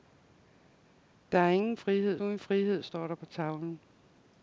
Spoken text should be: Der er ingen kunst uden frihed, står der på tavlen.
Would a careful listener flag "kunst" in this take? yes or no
yes